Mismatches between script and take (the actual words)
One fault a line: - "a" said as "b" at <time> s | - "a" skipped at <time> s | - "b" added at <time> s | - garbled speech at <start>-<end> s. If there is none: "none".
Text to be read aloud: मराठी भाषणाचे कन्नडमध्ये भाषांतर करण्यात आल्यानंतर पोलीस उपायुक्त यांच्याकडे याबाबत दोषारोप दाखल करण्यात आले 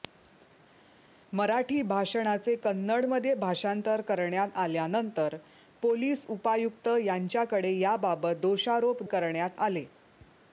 - "दाखल" skipped at 9.0 s